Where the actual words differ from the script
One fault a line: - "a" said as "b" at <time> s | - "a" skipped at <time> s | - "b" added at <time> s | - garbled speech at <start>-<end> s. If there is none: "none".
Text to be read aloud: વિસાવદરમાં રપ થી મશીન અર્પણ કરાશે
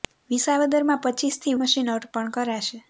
none